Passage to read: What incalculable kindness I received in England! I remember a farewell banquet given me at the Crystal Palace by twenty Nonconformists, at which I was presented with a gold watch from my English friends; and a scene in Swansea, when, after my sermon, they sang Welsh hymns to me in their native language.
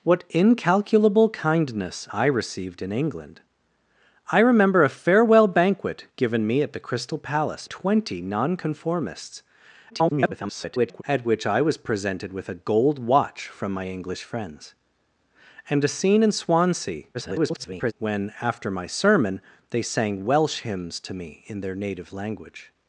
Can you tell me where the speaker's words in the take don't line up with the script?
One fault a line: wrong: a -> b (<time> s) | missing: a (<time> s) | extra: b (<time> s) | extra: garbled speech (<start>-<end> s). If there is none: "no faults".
missing: by (7.7 s)
extra: garbled speech (9.9-11.0 s)
extra: garbled speech (17.1-17.9 s)